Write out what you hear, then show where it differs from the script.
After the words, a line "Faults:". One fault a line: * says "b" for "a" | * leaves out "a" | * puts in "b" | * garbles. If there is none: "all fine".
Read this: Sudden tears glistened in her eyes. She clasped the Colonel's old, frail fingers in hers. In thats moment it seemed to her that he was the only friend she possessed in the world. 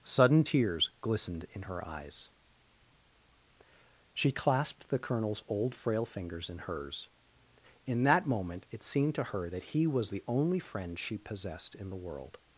Sudden tears glistened in her eyes. She clasped the Colonel's old, frail fingers in hers. In that moment it seemed to her that he was the only friend she possessed in the world.
Faults:
* says "that" for "thats"